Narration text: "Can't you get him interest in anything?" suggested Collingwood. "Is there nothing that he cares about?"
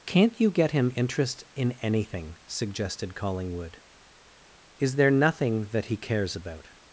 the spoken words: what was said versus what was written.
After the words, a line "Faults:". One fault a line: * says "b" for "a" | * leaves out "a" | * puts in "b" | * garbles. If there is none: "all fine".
"Can't you get him interest in anything?" suggested Collingwood. "Is there nothing that he cares about?"
Faults:
all fine